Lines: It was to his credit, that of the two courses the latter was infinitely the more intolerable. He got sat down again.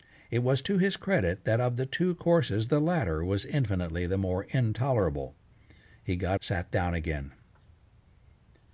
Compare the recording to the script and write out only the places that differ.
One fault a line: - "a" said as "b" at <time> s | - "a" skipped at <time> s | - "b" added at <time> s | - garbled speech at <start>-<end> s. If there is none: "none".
none